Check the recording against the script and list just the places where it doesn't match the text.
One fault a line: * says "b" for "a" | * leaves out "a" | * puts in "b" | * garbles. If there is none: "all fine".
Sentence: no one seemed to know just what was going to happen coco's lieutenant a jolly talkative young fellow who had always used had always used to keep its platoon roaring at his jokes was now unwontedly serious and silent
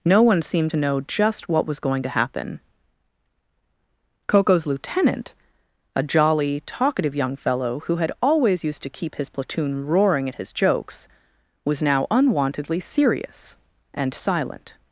* leaves out "had always used"
* says "his" for "its"